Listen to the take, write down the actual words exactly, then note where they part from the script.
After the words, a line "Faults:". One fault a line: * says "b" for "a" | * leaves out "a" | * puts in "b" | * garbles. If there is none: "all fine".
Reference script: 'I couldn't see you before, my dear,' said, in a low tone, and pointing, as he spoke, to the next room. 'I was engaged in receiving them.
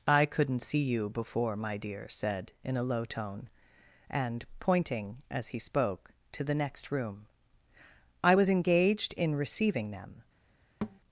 'I couldn't see you before, my dear,' said, in a low tone, and pointing, as he spoke, to the next room. 'I was engaged in receiving them.
Faults:
all fine